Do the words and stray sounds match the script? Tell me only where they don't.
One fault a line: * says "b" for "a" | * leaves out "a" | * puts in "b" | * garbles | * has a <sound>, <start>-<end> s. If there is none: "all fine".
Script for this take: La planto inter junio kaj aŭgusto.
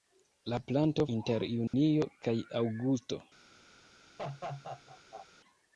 * has a dropout, 1.7-1.7 s
* has a laugh, 4.2-5.3 s